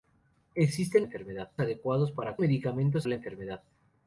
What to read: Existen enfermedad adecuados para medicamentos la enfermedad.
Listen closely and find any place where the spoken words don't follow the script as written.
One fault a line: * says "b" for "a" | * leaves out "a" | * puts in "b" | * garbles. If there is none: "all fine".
all fine